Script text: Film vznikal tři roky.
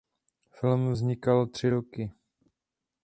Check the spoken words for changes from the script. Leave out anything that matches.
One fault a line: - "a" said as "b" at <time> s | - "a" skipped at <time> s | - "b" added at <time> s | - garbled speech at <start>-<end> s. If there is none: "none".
none